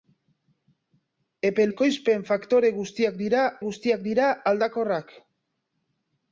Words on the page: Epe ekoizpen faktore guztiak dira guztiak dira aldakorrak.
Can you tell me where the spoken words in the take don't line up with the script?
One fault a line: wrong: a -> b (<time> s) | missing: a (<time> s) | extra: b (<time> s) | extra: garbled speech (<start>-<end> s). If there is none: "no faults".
no faults